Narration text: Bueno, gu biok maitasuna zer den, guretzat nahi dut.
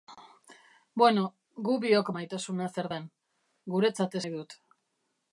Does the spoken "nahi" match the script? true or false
true